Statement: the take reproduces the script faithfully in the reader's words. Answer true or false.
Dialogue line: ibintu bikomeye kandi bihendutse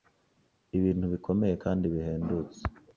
true